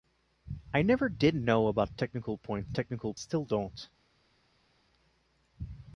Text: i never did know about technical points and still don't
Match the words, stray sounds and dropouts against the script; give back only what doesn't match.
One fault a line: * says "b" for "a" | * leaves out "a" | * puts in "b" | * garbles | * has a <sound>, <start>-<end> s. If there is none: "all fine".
* says "technical" for "and"